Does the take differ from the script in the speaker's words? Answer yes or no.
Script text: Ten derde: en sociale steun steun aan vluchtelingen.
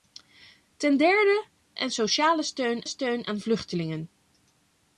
no